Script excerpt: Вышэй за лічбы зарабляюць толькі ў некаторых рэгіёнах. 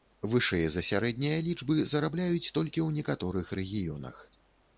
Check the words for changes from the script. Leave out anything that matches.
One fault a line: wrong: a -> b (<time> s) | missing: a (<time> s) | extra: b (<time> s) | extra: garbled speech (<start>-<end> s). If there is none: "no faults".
extra: сярэднія (0.9 s)